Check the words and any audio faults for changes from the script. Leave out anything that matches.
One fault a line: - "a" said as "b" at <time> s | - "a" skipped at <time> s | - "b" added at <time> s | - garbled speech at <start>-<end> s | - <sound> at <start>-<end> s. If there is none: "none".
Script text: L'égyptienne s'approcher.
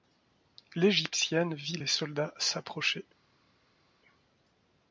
- "vit les soldats" added at 1.5 s